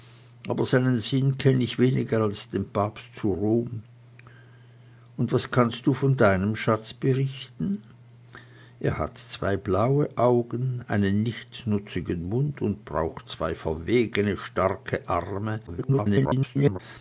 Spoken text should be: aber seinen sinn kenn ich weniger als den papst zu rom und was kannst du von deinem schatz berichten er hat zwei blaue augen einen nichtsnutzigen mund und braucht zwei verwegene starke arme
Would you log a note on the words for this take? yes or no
yes